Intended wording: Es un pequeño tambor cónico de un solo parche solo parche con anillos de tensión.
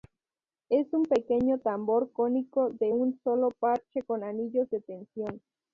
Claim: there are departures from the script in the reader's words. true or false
true